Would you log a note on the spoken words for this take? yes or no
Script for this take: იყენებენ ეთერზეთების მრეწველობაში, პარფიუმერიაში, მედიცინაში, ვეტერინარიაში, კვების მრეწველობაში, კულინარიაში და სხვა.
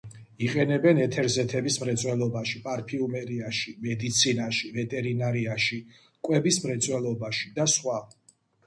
yes